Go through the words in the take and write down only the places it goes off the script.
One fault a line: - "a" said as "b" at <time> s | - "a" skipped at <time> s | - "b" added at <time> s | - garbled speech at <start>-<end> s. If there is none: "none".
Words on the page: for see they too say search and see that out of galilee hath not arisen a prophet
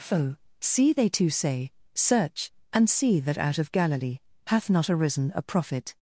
none